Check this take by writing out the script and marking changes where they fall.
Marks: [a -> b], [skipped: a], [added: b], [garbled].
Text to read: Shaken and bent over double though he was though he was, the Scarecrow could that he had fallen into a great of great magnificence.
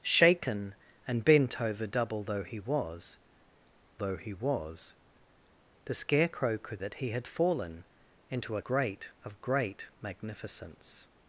Shaken and bent over double though he was though he was, the Scarecrow could that he had fallen into a great of great magnificence.